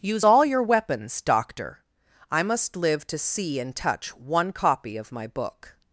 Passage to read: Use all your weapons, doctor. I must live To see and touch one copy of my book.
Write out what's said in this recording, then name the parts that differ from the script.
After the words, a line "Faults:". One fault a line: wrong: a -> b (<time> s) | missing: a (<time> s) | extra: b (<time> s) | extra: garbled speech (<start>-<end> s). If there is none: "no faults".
Use all your weapons, doctor. I must live To see and touch one copy of my book.
Faults:
no faults